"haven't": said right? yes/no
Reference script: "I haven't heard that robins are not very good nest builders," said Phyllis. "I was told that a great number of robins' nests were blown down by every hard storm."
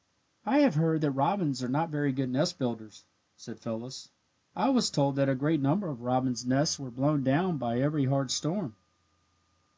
no